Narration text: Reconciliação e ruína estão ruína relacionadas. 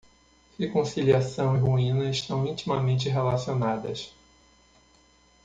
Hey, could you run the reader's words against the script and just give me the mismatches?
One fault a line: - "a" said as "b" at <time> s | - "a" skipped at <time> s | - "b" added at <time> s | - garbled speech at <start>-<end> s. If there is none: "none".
- "ruína" said as "intimamente" at 2.5 s